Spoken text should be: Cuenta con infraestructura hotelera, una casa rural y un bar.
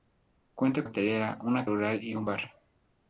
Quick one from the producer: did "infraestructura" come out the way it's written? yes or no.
no